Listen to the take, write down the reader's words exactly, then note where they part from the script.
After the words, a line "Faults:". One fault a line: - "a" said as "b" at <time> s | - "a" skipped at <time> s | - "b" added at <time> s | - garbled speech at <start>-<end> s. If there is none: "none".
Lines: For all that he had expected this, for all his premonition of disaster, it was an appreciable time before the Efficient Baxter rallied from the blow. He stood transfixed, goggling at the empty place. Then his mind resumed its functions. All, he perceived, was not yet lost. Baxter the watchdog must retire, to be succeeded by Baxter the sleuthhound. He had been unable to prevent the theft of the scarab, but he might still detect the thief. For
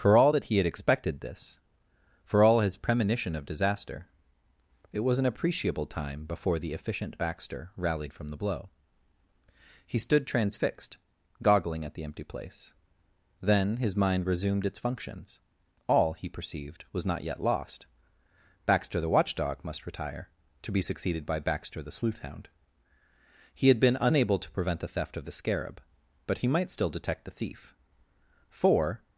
For all that he had expected this, for all his premonition of disaster, it was an appreciable time before the Efficient Baxter rallied from the blow. He stood transfixed, goggling at the empty place. Then his mind resumed its functions. All, he perceived, was not yet lost. Baxter the watchdog must retire, to be succeeded by Baxter the sleuthhound. He had been unable to prevent the theft of the scarab, but he might still detect the thief. For
Faults:
none